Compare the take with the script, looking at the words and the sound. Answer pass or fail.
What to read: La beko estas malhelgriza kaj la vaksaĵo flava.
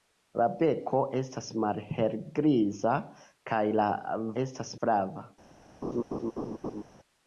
fail